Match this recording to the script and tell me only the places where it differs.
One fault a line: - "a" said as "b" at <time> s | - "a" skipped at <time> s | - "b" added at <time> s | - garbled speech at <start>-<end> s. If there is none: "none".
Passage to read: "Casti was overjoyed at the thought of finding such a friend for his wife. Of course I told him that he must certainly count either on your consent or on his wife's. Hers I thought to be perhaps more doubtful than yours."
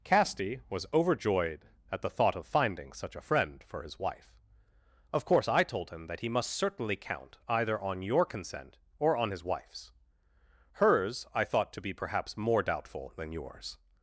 none